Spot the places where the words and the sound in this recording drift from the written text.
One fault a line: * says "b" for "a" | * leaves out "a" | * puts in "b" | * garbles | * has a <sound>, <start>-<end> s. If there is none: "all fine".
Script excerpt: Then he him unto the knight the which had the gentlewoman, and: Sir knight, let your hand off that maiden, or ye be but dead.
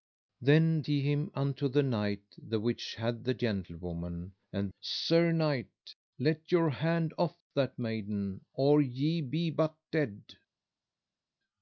all fine